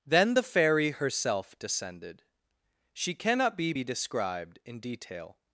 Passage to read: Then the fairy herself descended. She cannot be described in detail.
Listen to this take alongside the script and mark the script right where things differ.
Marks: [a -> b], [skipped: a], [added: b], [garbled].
Then the fairy herself descended. She cannot be [added: be] described in detail.